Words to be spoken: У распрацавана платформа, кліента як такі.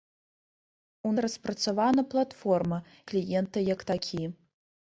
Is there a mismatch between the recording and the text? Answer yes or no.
no